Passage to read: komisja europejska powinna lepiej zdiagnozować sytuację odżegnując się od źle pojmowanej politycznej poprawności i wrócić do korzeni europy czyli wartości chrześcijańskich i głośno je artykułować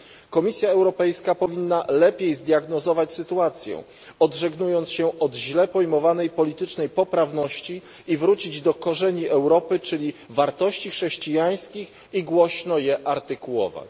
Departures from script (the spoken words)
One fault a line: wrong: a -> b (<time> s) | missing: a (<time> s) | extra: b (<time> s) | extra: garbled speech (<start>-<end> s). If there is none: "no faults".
no faults